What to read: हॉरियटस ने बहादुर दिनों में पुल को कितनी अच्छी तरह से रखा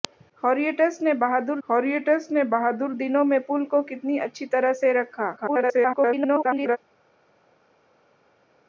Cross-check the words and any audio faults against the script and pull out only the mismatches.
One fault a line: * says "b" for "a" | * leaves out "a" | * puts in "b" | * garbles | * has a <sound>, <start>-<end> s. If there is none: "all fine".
* puts in "हॉरियटस ने बहादुर"
* garbles